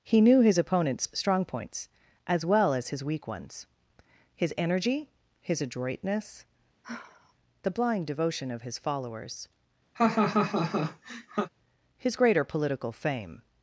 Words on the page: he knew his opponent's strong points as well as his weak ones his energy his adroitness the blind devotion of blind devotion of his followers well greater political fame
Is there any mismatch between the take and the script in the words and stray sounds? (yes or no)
yes